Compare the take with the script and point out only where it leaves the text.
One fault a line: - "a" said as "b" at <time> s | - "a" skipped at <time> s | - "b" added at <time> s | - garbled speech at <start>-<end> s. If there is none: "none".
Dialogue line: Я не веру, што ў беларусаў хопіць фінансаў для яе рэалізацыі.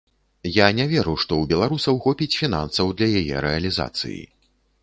none